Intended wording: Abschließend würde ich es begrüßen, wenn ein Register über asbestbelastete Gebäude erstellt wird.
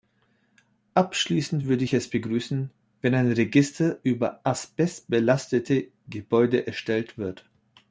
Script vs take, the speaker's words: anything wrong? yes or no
no